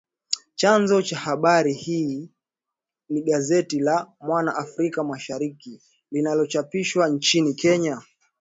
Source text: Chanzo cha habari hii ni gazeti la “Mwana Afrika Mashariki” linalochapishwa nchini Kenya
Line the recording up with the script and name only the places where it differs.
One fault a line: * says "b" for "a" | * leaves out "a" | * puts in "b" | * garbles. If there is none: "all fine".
all fine